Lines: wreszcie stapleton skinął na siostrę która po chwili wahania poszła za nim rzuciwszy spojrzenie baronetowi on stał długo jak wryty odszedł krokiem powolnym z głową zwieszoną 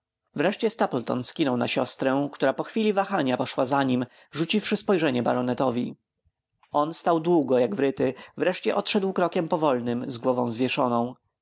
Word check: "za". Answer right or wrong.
right